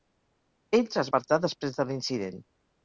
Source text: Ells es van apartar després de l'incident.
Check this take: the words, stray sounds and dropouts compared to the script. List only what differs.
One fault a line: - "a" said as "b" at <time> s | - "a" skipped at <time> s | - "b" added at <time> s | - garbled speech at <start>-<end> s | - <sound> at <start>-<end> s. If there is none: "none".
- "van" skipped at 1.1 s